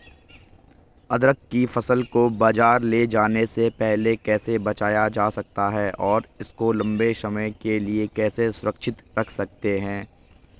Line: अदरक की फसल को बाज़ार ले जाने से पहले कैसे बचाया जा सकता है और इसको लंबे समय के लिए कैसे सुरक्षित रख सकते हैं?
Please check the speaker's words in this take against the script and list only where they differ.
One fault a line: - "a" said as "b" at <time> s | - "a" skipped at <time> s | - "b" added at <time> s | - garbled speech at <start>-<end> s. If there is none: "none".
none